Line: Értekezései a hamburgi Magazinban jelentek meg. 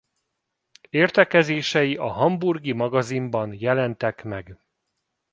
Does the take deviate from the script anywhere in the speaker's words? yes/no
no